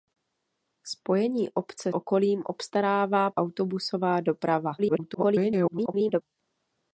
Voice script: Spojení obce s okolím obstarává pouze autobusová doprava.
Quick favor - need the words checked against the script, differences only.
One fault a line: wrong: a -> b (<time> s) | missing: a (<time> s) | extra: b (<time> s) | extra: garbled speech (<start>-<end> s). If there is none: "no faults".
missing: s (1.9 s)
missing: pouze (3.3 s)
extra: garbled speech (4.8-6.2 s)